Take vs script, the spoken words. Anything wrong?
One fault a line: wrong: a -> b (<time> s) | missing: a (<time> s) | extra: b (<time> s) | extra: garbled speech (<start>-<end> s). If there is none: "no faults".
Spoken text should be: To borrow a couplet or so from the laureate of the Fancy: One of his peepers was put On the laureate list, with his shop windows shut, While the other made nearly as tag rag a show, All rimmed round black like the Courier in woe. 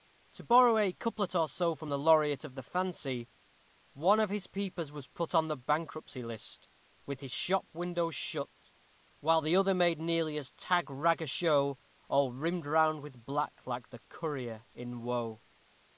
wrong: laureate -> bankruptcy (5.6 s)
extra: with (13.0 s)